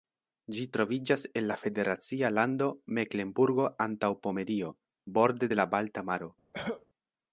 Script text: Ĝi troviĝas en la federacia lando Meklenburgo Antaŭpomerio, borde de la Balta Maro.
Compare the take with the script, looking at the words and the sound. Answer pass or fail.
fail